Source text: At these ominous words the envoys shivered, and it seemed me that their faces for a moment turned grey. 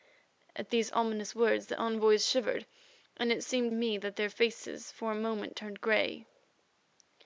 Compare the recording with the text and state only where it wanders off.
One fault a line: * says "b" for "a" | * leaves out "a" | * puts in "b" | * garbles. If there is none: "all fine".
all fine